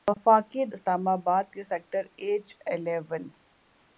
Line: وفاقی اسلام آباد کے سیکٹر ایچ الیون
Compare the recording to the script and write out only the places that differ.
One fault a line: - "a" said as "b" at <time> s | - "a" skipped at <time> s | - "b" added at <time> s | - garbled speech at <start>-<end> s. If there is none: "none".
none